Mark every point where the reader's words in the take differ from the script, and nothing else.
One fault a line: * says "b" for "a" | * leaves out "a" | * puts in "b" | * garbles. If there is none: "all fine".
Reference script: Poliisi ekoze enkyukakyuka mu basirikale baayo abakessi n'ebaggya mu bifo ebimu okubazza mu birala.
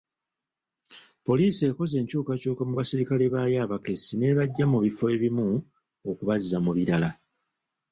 all fine